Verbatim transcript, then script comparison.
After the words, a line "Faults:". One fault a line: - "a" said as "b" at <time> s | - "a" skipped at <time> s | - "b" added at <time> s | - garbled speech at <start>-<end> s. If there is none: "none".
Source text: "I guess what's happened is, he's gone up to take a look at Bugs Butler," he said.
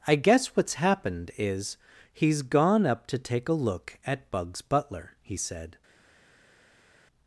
"I guess what's happened is, he's gone up to take a look at Bugs Butler," he said.
Faults:
none